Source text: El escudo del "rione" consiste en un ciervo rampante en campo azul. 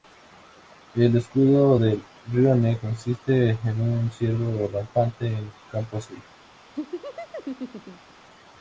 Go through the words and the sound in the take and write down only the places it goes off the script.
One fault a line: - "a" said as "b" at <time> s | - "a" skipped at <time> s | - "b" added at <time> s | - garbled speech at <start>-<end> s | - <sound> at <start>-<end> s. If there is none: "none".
- laugh at 6.8-8.1 s